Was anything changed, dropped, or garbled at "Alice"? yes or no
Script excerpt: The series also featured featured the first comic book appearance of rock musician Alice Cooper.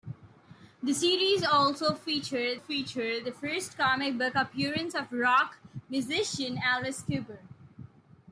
no